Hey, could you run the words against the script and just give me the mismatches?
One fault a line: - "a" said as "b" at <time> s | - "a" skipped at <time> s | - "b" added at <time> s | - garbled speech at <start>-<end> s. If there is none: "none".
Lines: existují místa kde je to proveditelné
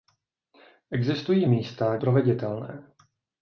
- "kde je to" skipped at 2.0 s